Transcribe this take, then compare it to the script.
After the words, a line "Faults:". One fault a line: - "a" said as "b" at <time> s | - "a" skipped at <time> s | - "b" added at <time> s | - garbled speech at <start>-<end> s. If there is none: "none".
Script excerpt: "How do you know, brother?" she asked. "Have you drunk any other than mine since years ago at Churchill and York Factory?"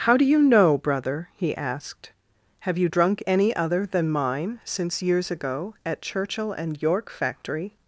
"How do you know, brother?" he asked. "Have you drunk any other than mine since years ago at Churchill and York Factory?"
Faults:
- "she" said as "he" at 1.4 s